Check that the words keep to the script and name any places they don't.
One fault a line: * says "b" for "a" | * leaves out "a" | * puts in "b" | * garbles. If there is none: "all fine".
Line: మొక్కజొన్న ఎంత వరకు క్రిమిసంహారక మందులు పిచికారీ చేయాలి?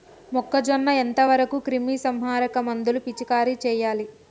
all fine